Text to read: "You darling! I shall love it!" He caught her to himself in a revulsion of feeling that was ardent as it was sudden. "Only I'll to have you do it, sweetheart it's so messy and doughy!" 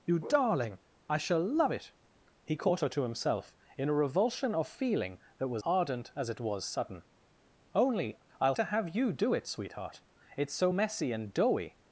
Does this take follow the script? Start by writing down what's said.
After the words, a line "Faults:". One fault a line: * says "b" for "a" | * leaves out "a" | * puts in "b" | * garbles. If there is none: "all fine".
"You darling! I shall love it!" He caught her to himself in a revulsion of feeling that was ardent as it was sudden. "Only I'll to have you do it, sweetheart it's so messy and doughy!"
Faults:
all fine